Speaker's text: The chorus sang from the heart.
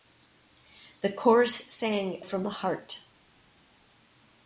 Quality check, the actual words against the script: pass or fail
pass